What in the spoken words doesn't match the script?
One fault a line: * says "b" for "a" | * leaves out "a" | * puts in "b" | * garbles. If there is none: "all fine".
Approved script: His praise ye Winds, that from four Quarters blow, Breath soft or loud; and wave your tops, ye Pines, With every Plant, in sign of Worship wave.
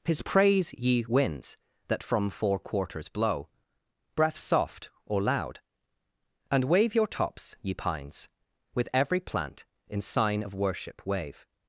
all fine